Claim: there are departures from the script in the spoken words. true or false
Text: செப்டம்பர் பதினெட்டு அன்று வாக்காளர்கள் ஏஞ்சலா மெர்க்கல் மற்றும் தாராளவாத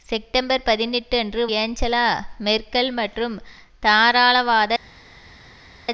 true